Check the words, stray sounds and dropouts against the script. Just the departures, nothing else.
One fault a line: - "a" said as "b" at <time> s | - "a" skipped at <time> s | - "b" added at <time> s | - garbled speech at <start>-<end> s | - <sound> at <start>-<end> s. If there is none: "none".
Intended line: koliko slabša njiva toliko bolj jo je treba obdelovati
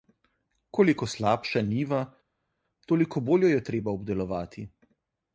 none